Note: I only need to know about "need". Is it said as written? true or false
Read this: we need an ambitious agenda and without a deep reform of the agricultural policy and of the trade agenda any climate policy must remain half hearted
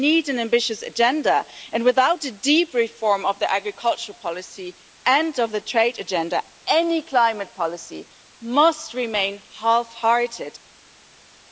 true